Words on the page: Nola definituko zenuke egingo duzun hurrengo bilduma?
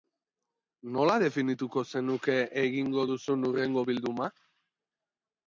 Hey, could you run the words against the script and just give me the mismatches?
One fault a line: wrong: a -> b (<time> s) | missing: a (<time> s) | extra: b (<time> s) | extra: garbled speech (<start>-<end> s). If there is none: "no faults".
no faults